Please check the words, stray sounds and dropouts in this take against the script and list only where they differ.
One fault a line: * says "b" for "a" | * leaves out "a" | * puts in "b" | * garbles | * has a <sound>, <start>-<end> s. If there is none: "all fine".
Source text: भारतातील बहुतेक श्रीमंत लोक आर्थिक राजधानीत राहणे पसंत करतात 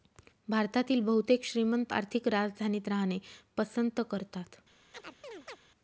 * leaves out "लोक"
* has a chirp, 4.9-5.6 s